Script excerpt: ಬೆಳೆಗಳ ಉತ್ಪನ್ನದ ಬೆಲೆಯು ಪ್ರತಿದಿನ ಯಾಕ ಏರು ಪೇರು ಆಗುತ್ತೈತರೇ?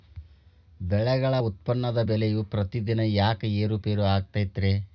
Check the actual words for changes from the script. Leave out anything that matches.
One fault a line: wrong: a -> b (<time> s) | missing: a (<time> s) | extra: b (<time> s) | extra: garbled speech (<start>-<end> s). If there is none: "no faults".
no faults